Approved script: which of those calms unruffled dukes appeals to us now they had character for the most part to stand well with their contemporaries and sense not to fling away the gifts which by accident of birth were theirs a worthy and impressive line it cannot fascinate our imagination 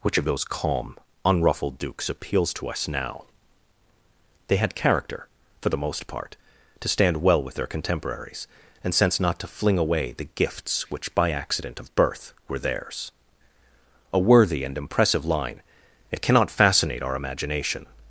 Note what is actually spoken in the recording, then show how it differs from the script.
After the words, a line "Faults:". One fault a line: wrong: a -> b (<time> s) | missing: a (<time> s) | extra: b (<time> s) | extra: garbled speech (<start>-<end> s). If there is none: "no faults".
which of those calm unruffled dukes appeals to us now they had character for the most part to stand well with their contemporaries and sense not to fling away the gifts which by accident of birth were theirs a worthy and impressive line it cannot fascinate our imagination
Faults:
wrong: calms -> calm (0.5 s)